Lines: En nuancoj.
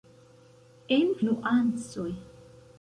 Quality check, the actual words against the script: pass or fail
pass